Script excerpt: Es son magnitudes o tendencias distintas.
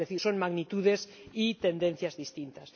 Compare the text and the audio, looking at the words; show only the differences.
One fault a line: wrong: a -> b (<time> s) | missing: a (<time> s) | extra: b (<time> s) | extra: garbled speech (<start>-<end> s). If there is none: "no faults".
extra: decir (0.1 s)
wrong: o -> y (1.3 s)